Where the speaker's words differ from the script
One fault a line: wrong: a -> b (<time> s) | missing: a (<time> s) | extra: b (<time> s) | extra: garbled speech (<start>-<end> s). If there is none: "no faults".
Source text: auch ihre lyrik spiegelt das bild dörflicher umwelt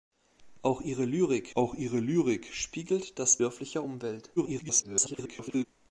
extra: auch ihre lyrik (1.5 s)
missing: bild (3.4 s)
extra: garbled speech (4.4-5.6 s)